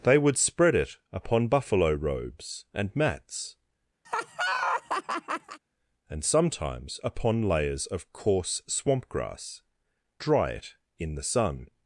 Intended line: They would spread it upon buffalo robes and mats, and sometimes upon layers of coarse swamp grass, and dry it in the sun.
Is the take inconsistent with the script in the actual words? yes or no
yes